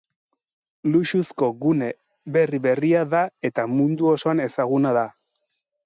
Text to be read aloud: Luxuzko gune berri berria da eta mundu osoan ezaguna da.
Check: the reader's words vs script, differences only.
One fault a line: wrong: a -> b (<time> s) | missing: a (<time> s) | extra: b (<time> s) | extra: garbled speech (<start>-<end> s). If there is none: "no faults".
no faults